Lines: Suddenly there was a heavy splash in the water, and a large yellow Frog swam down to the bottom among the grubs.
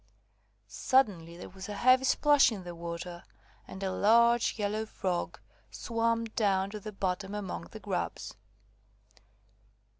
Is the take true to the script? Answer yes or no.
yes